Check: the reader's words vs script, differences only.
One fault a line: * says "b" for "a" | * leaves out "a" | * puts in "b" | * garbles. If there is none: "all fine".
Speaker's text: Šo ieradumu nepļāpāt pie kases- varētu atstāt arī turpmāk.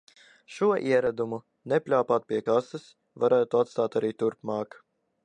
all fine